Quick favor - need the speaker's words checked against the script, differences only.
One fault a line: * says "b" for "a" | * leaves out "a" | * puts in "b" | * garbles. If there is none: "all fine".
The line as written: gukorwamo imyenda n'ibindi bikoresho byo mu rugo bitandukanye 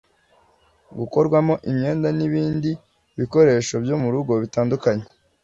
all fine